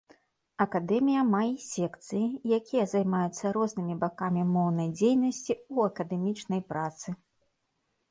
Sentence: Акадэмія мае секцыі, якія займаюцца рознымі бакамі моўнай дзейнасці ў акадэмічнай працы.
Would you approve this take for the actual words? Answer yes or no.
yes